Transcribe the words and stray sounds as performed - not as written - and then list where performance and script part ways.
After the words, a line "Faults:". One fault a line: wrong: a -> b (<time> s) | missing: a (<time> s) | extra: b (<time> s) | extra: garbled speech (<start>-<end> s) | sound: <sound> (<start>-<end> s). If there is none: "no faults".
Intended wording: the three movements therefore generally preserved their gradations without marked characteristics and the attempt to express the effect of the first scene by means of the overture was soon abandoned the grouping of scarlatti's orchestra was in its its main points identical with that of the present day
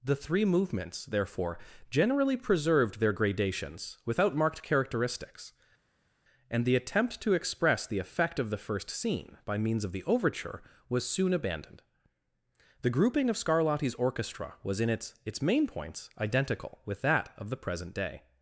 the three movements therefore generally preserved their gradations without marked characteristics and the attempt to express the effect of the first scene by means of the overture was soon abandoned the grouping of scarlatti's orchestra was in its its main points identical with that of the present day
Faults:
no faults